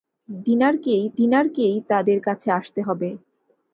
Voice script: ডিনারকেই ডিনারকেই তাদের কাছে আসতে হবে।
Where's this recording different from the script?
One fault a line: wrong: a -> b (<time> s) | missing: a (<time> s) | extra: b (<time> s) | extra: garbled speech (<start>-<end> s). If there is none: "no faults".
no faults